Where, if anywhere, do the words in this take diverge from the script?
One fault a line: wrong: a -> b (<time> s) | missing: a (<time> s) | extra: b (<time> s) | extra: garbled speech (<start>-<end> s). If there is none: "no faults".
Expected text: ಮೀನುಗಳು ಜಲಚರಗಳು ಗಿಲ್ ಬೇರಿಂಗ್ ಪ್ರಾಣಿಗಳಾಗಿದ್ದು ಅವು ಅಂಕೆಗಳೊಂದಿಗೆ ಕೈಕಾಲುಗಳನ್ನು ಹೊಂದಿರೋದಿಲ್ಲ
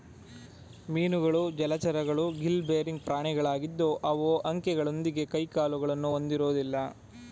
no faults